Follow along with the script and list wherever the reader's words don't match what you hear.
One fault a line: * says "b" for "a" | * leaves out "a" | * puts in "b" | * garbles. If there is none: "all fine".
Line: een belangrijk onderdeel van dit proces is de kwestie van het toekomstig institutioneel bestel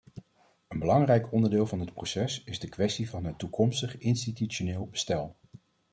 all fine